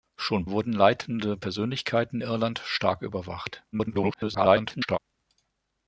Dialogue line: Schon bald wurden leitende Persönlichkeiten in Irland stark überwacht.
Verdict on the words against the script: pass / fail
fail